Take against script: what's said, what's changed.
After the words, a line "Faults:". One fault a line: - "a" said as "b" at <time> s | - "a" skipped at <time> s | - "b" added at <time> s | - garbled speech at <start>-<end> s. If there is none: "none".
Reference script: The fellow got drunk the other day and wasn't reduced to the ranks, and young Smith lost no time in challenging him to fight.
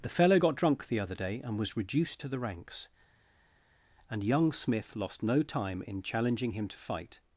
The fellow got drunk the other day and was reduced to the ranks, and young Smith lost no time in challenging him to fight.
Faults:
- "wasn't" said as "was" at 1.6 s